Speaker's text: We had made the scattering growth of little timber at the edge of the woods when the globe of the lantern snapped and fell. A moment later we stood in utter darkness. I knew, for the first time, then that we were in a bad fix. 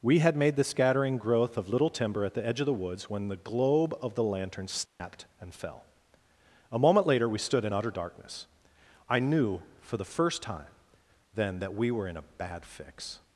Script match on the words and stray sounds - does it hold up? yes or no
no